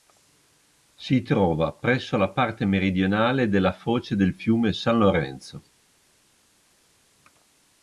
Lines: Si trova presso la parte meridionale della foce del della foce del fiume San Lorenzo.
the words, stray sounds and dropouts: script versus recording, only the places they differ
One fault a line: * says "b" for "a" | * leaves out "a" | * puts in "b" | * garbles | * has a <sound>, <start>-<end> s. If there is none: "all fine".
* leaves out "della foce del"